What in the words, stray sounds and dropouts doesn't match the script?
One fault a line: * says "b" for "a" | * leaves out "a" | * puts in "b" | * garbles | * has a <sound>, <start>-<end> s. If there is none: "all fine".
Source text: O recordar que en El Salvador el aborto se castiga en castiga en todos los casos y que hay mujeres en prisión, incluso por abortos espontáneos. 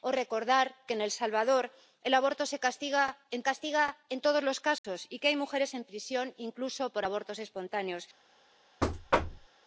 * has a dropout, 4.8-4.8 s
* has a thud, 8.8-9.5 s